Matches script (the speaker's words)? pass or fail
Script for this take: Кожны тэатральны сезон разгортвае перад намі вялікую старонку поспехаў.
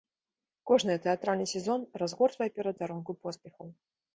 fail